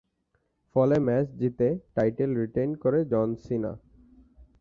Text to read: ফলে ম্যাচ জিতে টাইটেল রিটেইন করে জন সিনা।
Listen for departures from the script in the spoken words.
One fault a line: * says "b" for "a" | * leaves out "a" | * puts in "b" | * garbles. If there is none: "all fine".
all fine